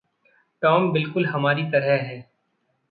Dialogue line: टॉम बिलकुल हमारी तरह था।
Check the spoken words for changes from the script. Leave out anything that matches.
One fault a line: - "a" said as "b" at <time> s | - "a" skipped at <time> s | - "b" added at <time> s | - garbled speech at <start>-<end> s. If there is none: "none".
- "था" said as "है" at 2.0 s